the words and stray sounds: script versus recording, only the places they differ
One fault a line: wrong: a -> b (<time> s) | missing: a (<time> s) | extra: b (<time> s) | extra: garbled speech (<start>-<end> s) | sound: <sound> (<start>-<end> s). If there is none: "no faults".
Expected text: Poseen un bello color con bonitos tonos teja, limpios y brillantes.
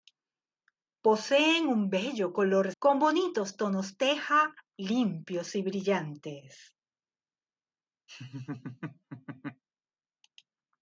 sound: laugh (8.1-9.6 s)